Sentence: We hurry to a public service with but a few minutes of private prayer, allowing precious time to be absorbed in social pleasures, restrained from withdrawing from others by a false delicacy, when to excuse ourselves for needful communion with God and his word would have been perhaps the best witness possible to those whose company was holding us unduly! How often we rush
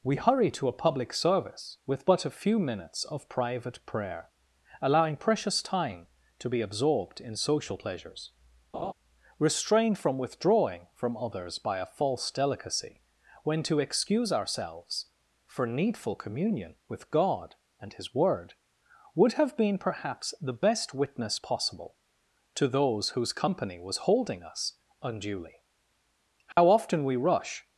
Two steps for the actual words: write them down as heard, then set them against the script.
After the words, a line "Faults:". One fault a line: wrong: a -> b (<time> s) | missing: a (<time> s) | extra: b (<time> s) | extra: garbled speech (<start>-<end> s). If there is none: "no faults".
We hurry to a public service with but a few minutes of private prayer, allowing precious time to be absorbed in social pleasures, restrained from withdrawing from others by a false delicacy, when to excuse ourselves for needful communion with God and his word would have been perhaps the best witness possible to those whose company was holding us unduly! How often we rush
Faults:
no faults